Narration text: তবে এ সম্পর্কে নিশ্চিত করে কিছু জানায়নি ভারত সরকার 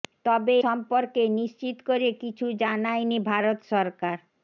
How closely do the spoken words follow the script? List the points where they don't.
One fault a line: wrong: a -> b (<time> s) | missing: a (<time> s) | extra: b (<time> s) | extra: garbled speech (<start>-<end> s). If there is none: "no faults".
missing: এ (0.6 s)